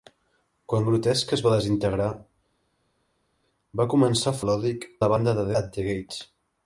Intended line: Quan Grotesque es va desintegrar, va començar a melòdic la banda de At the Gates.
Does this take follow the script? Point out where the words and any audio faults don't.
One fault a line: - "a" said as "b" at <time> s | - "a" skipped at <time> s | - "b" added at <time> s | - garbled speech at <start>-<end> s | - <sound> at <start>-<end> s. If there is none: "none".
none